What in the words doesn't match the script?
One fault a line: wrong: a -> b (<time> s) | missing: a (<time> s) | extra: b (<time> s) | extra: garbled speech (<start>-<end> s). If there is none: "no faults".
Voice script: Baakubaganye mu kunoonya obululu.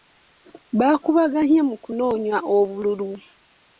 no faults